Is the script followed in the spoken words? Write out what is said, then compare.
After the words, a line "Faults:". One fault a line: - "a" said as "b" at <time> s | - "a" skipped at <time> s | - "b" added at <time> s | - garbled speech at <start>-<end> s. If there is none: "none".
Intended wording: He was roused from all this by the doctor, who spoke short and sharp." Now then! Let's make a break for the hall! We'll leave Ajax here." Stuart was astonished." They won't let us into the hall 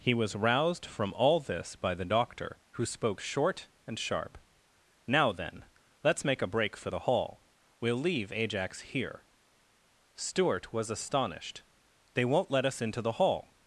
He was roused from all this by the doctor, who spoke short and sharp." Now then! Let's make a break for the hall! We'll leave Ajax here." Stuart was astonished." They won't let us into the hall
Faults:
none